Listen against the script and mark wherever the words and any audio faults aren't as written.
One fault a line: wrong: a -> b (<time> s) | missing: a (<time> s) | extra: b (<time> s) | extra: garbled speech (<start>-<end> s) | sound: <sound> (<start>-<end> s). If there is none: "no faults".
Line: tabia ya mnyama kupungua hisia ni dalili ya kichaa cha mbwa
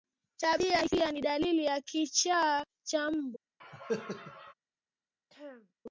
missing: ya mnyama kupungua (0.8 s)
sound: cough (3.6-4.5 s)
sound: throat clearing (5.3-5.7 s)